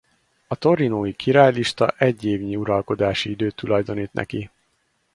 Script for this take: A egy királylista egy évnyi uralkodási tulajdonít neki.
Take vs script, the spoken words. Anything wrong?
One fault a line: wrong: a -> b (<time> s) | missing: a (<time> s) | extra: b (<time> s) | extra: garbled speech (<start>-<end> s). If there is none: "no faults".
wrong: egy -> torinói (0.6 s)
extra: időt (3.3 s)